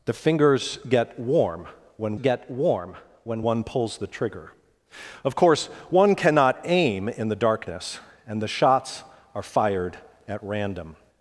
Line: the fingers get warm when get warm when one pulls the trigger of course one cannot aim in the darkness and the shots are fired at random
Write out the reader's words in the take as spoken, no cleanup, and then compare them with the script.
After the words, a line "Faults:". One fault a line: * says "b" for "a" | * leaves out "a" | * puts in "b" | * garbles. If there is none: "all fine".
the fingers get warm when get warm when one pulls the trigger of course one cannot aim in the darkness and the shots are fired at random
Faults:
all fine